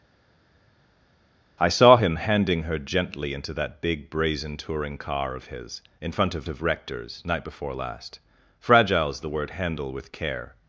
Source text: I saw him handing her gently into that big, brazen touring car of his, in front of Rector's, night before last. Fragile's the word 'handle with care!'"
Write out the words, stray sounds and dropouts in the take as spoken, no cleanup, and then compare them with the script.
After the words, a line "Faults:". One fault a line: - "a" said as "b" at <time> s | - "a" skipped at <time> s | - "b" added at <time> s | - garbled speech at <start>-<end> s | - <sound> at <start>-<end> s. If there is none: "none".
I saw him handing her gently into that big, brazen touring car of his, in front of of Rector's, night before last. Fragile's the word 'handle with care!'"
Faults:
- "of" added at 6.5 s